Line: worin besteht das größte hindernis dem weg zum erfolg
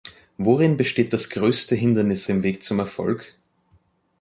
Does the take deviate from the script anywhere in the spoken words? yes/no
no